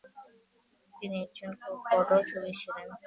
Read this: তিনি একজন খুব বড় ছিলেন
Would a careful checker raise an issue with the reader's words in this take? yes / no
yes